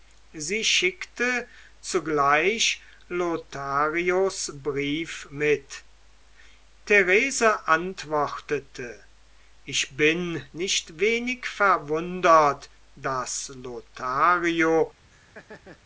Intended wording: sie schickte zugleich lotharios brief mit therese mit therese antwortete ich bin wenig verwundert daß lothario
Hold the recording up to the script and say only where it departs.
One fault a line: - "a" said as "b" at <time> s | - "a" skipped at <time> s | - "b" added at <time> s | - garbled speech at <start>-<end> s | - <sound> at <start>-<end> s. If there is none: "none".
- "mit therese" skipped at 7.7 s
- "nicht" added at 10.5 s
- laugh at 15.1-15.8 s